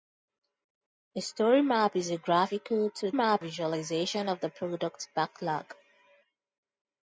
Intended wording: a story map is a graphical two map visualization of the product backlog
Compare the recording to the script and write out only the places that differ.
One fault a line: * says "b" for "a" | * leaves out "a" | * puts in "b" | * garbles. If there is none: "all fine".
all fine